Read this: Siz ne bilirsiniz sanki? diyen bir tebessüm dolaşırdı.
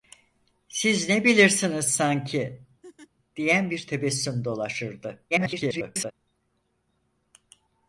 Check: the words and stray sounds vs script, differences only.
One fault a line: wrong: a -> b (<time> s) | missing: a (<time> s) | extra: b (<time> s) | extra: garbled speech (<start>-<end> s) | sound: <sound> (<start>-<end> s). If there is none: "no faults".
sound: laugh (2.8-3.1 s)
extra: garbled speech (5.3-6.1 s)